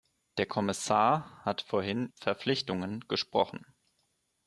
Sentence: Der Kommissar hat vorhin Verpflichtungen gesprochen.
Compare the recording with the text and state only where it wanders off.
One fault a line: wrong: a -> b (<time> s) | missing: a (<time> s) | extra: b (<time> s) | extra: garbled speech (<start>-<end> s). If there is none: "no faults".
no faults